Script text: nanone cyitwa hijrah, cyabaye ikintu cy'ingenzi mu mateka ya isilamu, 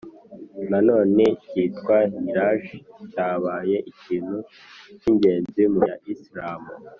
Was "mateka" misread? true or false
true